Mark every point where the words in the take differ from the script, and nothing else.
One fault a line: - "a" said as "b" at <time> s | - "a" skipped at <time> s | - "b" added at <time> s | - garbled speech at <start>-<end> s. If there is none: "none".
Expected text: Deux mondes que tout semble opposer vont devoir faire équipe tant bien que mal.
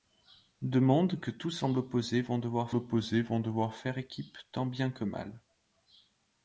- "opposer vont devoir" added at 2.7 s